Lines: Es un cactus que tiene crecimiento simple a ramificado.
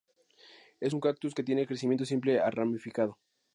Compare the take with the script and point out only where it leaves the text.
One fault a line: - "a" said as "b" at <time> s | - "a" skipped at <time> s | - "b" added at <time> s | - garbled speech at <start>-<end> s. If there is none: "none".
none